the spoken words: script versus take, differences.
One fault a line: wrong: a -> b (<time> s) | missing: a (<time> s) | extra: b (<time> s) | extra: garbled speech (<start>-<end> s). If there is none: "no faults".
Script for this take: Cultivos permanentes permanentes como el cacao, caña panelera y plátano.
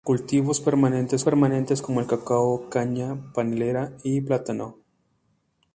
no faults